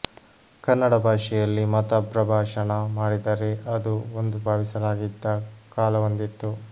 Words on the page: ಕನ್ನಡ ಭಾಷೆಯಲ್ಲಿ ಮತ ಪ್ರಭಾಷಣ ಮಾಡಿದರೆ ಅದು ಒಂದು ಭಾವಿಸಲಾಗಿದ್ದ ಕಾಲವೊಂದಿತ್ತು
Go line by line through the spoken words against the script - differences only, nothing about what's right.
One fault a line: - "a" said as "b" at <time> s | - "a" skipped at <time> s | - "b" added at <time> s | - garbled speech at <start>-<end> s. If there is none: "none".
none